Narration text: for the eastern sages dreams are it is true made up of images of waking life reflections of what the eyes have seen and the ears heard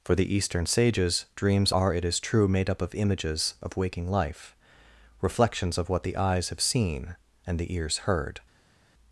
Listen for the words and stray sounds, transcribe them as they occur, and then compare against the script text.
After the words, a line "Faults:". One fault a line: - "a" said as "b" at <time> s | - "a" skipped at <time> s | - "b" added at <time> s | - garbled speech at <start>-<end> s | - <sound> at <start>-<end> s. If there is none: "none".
for the eastern sages dreams are it is true made up of images of waking life reflections of what the eyes have seen and the ears heard
Faults:
none